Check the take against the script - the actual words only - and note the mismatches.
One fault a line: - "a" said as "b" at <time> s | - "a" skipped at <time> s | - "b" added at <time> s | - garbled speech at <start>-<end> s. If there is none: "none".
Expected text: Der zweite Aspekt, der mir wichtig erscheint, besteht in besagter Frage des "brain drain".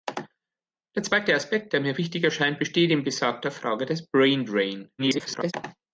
- garbled speech at 5.0-5.5 s